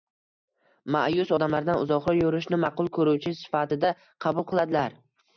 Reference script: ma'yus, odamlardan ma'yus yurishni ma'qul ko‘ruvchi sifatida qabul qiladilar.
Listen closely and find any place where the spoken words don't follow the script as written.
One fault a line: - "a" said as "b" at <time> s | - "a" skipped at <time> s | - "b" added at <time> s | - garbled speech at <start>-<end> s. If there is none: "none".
- "ma'yus" said as "uzoqroq" at 1.8 s